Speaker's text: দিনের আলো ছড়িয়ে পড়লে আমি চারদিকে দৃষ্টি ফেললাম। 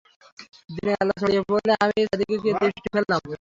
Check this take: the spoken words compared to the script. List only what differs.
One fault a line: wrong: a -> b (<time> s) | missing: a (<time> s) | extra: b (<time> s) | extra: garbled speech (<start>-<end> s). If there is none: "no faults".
no faults